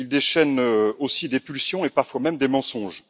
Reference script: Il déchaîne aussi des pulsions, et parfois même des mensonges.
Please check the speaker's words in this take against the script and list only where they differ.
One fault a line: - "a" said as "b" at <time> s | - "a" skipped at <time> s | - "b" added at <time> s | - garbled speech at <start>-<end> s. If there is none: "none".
none